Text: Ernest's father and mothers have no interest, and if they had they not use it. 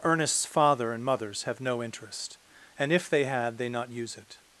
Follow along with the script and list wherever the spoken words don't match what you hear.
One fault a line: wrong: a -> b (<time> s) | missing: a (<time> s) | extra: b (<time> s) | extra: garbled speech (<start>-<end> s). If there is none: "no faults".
no faults